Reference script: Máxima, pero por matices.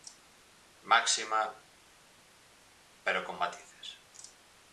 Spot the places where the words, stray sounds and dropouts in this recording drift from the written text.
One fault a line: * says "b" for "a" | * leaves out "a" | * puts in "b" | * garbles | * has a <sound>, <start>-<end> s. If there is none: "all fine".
* says "con" for "por"